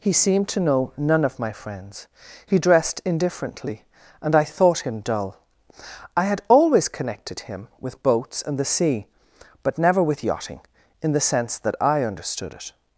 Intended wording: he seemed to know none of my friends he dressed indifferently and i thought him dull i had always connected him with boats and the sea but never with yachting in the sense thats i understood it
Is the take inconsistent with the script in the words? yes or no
yes